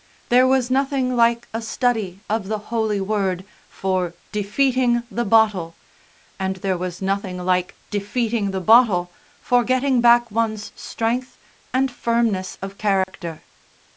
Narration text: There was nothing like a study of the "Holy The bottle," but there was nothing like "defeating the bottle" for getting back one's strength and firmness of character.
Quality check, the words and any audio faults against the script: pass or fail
fail